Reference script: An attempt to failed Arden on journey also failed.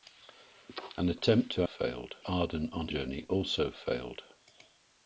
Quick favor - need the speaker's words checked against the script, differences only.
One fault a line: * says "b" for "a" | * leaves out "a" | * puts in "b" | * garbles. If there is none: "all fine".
all fine